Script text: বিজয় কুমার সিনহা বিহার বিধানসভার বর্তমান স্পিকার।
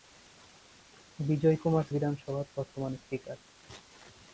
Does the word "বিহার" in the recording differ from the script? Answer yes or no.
yes